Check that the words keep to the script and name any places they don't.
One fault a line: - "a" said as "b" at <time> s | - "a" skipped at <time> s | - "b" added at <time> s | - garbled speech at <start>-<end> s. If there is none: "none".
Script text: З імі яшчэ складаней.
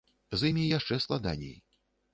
none